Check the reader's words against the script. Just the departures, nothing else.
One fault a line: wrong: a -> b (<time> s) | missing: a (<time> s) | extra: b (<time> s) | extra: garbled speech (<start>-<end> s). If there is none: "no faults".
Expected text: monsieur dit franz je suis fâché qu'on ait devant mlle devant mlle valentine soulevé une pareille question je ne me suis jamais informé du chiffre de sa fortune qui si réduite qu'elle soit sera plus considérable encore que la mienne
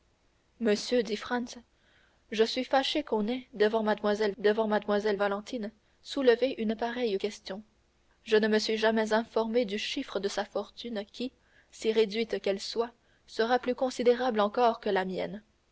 no faults